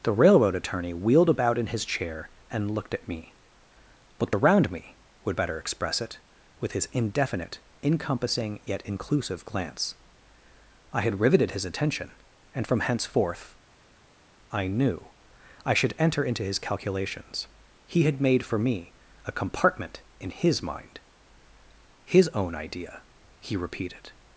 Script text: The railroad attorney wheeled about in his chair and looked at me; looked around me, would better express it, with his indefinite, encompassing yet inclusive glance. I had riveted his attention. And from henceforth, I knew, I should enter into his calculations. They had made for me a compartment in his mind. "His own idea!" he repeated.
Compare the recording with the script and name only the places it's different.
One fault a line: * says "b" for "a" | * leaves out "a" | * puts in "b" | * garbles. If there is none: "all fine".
* says "He" for "They"